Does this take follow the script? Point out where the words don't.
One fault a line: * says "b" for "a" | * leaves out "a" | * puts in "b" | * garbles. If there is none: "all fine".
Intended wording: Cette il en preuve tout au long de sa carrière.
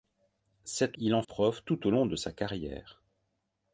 all fine